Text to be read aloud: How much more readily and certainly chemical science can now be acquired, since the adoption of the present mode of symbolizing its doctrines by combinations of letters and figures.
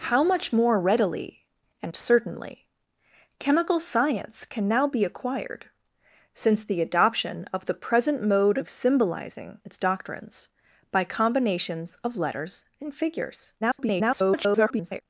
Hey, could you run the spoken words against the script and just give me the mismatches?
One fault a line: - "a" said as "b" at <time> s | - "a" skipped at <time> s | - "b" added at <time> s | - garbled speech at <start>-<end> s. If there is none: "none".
- garbled speech at 13.6-15.0 s